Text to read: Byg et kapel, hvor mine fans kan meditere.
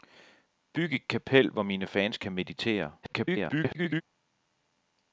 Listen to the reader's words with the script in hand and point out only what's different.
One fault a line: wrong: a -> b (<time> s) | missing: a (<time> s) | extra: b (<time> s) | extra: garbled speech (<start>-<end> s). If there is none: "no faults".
extra: garbled speech (3.0-4.0 s)